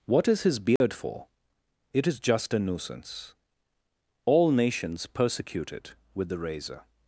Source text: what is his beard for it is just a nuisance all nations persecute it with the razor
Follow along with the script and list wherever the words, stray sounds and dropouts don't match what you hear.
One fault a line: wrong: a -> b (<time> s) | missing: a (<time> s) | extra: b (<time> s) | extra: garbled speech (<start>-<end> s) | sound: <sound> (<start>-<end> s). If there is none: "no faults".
sound: dropout (0.8-0.8 s)